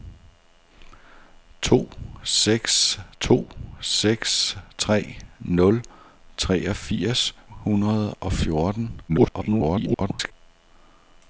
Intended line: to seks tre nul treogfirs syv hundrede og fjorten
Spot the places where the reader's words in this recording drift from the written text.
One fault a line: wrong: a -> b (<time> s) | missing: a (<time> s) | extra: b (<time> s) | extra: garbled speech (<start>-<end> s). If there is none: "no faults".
extra: to seks (3.2 s)
missing: syv (7.3 s)
extra: garbled speech (9.1-10.3 s)